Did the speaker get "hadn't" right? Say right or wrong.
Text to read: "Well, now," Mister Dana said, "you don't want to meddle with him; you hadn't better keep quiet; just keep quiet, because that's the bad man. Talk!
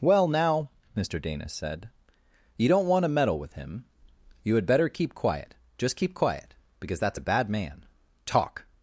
wrong